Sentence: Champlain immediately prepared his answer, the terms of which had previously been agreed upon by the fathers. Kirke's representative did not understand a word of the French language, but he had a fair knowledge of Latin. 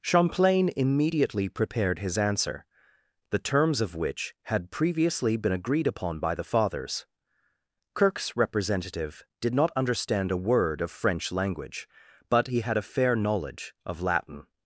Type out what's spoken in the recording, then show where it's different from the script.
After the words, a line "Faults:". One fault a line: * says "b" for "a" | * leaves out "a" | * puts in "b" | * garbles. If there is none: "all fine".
Champlain immediately prepared his answer, the terms of which had previously been agreed upon by the fathers. Kirke's representative did not understand a word of French language, but he had a fair knowledge of Latin.
Faults:
* leaves out "the"